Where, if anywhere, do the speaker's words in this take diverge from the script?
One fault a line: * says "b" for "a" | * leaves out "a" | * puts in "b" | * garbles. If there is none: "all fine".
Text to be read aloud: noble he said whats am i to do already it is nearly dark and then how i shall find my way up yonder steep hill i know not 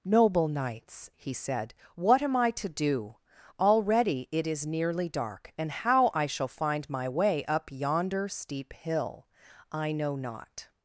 * puts in "knights"
* says "what" for "whats"
* leaves out "then"